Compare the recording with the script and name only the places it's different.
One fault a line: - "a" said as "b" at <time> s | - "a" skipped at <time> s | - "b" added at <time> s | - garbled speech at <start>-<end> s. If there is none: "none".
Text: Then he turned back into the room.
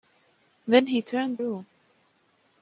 - "back into the" skipped at 1.4 s